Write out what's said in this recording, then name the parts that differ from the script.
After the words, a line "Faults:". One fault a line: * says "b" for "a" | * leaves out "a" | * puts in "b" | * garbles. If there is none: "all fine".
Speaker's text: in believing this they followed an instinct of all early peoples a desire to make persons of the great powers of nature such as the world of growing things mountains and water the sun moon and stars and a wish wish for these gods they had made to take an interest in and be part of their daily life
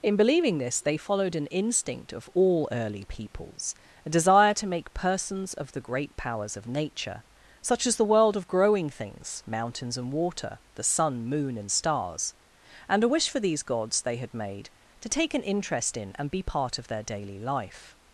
in believing this they followed an instinct of all early peoples a desire to make persons of the great powers of nature such as the world of growing things mountains and water the sun moon and stars and a wish for these gods they had made to take an interest in and be part of their daily life
Faults:
* leaves out "wish"